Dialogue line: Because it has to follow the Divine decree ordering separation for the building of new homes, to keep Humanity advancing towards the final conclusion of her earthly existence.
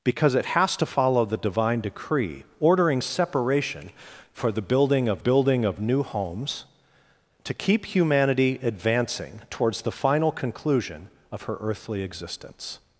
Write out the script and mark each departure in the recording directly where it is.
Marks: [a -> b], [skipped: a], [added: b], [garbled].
Because it has to follow the Divine decree ordering separation for the building of [added: building of] new homes, to keep Humanity advancing towards the final conclusion of her earthly existence.